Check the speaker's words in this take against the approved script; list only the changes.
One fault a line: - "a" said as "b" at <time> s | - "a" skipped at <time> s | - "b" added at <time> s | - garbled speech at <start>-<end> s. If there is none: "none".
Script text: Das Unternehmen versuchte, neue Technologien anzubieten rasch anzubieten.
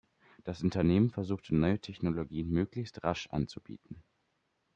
- "anzubieten" said as "möglichst" at 2.5 s